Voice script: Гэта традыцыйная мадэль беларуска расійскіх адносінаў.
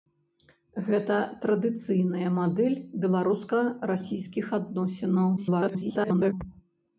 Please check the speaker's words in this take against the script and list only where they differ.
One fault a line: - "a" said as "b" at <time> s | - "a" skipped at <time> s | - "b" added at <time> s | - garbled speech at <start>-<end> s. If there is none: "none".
- garbled speech at 5.4-6.3 s